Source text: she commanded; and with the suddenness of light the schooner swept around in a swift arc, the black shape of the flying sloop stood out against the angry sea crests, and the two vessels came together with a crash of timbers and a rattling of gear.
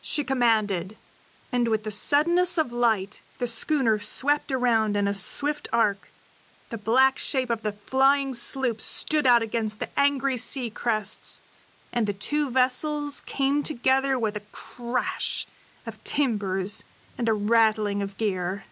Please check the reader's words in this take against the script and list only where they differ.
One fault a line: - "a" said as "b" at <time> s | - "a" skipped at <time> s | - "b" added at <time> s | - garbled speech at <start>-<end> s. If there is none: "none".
none